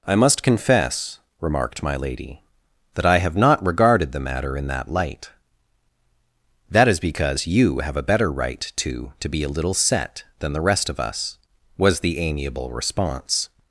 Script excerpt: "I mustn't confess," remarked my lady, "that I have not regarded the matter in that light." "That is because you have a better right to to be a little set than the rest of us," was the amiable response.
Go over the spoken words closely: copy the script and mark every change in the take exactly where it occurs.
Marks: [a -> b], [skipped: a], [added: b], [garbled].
"I [mustn't -> must] confess," remarked my lady, "that I have not regarded the matter in that light." "That is because you have a better right to to be a little set than the rest of us," was the amiable response.